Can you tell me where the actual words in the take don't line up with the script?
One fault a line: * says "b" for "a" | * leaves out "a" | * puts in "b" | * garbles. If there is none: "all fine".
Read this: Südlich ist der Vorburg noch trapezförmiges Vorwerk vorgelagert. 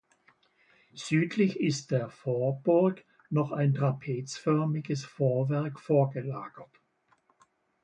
* puts in "ein"